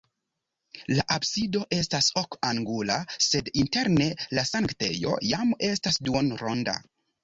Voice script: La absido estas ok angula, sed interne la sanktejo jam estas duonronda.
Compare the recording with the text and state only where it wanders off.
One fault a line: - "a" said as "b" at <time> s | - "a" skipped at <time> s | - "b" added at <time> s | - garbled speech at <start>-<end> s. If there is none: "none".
none